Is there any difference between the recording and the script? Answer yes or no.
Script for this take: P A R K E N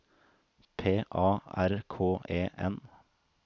no